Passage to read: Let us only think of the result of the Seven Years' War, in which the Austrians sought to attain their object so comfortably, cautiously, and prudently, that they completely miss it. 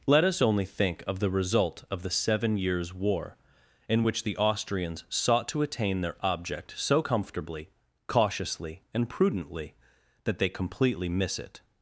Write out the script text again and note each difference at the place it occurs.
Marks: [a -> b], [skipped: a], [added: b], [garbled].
Let us only think of the result of the Seven Years' War, in which the Austrians sought to attain their object so comfortably, cautiously, and prudently, that they completely miss it.